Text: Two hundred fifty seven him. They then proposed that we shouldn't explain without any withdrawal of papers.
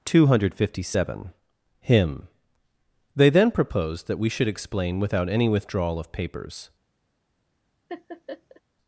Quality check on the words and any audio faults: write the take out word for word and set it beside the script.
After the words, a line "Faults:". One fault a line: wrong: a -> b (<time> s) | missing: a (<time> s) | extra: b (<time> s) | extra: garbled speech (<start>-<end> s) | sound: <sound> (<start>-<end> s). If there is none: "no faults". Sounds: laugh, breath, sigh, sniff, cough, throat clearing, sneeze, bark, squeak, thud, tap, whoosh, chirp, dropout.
Two hundred fifty seven him. They then proposed that we should explain without any withdrawal of papers.
Faults:
wrong: shouldn't -> should (4.3 s)
sound: laugh (7.9-8.6 s)